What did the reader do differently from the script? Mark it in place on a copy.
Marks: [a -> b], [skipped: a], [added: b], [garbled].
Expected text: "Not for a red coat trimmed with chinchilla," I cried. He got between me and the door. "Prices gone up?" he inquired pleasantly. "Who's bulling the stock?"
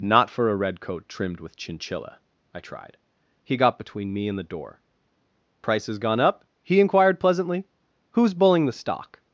"Not for a red coat trimmed with chinchilla," I [cried. -> tried] He got between me and the door. "Prices gone up?" he inquired pleasantly. "Who's bulling the stock?"